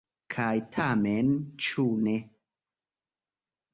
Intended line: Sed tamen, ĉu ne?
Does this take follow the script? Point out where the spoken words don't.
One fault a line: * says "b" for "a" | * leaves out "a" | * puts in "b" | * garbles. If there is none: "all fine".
* says "Kaj" for "Sed"